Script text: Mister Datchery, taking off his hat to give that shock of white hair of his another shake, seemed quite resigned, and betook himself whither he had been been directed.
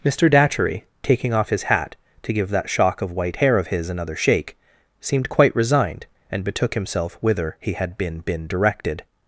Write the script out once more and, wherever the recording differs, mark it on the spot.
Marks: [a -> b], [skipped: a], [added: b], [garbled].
Mister Datchery, taking off his hat to give that shock of white hair of his another shake, seemed quite resigned, and betook himself whither he had been been directed.